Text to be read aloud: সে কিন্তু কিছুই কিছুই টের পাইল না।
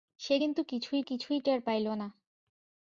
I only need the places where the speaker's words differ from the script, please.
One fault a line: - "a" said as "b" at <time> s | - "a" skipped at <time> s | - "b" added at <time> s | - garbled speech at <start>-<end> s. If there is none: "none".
none